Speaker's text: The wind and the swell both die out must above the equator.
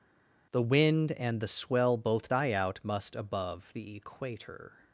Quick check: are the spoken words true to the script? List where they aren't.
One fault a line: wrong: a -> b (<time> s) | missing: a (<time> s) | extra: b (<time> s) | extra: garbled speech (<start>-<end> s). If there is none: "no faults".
no faults